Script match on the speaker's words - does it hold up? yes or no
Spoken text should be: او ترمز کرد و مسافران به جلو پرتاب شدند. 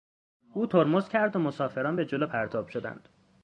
yes